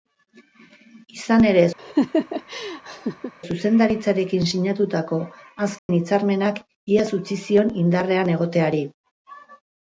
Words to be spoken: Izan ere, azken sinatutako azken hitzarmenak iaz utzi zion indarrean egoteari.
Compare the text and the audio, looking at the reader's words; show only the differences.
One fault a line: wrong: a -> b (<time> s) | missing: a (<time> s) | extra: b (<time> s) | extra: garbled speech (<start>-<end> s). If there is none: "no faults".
wrong: azken -> zuzendaritzarekin (3.5 s)